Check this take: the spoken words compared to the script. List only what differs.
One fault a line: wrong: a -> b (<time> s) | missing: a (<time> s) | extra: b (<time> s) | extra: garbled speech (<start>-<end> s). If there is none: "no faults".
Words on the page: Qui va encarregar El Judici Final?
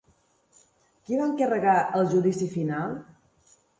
no faults